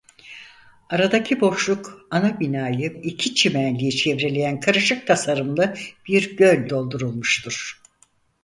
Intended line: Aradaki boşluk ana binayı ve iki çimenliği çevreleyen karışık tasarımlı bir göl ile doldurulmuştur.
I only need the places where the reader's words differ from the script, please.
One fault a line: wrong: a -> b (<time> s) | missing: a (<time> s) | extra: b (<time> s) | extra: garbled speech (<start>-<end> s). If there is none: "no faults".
missing: ve (3.0 s)
missing: ile (6.7 s)